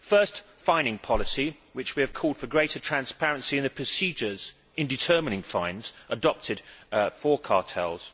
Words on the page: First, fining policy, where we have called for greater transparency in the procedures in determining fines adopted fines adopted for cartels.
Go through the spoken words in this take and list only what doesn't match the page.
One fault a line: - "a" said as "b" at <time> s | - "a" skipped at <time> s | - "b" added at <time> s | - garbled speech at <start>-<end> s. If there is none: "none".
- "fines adopted" skipped at 6.6 s